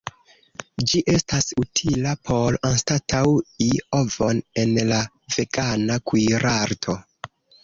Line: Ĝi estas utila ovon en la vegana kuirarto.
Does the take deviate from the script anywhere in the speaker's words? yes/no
yes